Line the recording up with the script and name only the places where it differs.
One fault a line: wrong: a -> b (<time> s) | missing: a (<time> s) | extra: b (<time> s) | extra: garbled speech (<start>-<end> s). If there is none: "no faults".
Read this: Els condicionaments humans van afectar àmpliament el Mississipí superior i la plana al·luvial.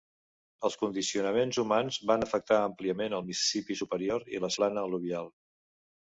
no faults